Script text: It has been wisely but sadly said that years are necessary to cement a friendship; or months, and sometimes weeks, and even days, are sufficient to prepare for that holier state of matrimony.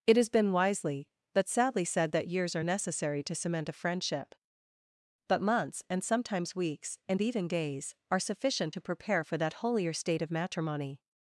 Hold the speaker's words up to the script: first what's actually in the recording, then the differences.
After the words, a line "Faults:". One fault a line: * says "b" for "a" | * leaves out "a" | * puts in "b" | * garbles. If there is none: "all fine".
It has been wisely but sadly said that years are necessary to cement a friendship; but months, and sometimes weeks, and even days, are sufficient to prepare for that holier state of matrimony.
Faults:
* says "but" for "or"